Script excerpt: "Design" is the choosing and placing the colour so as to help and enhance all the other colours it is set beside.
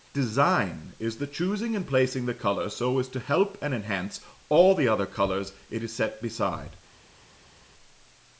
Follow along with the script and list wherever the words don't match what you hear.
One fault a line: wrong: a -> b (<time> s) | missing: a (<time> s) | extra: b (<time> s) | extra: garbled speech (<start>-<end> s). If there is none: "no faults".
no faults